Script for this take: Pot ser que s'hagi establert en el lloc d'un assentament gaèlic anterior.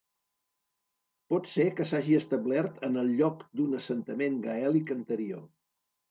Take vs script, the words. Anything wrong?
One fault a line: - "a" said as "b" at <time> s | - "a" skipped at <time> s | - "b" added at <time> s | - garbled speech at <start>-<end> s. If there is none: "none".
none